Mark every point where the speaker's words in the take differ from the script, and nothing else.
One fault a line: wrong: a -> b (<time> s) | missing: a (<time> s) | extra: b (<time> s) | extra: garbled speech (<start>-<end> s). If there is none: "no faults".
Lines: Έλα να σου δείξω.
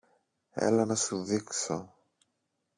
no faults